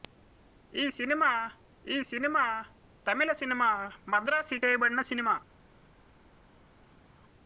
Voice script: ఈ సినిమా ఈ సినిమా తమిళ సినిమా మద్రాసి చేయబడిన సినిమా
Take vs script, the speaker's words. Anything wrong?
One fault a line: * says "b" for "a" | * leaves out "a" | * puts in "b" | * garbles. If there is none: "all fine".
all fine